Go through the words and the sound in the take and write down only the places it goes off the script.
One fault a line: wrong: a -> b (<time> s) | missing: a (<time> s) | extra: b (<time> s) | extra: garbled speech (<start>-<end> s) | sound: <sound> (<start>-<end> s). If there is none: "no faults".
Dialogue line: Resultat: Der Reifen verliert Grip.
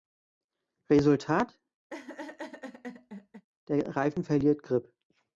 sound: laugh (1.9-3.5 s)